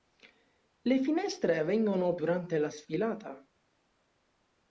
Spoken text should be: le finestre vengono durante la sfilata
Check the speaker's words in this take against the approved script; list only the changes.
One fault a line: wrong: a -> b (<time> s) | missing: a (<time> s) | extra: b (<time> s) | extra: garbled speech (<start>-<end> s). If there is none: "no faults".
no faults